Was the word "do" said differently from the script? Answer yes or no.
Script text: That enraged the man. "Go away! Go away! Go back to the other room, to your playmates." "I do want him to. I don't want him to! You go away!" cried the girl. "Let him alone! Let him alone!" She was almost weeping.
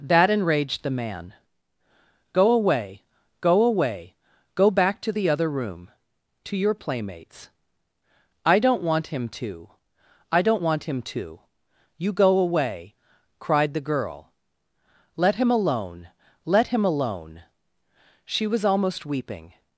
yes